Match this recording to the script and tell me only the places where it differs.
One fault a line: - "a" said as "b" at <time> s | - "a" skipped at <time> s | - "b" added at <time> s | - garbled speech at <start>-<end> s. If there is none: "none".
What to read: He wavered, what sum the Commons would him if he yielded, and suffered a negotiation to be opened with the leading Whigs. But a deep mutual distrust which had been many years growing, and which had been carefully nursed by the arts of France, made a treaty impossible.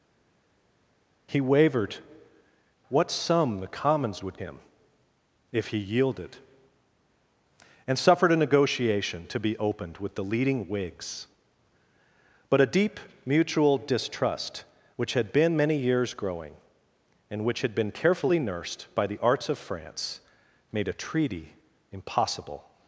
none